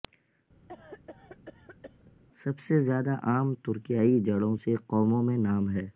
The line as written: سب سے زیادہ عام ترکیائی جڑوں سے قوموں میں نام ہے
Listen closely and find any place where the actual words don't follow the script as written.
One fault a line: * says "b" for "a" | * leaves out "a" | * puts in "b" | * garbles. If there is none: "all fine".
all fine